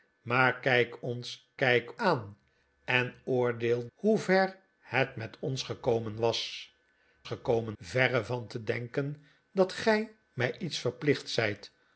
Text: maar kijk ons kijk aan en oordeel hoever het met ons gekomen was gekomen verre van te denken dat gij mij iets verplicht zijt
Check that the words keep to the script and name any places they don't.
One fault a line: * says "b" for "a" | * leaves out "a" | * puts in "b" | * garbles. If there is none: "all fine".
all fine